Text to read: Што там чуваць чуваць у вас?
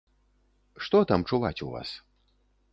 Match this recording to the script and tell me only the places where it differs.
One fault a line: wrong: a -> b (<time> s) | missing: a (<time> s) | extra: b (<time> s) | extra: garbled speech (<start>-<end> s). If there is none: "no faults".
missing: чуваць (1.6 s)